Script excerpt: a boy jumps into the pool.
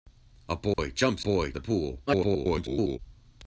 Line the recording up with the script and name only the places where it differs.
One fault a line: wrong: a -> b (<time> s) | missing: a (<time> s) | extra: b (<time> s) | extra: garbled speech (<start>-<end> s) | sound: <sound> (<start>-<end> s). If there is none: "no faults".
sound: dropout (0.7-0.8 s)
wrong: into -> boy (1.2 s)
extra: garbled speech (2.1-3.0 s)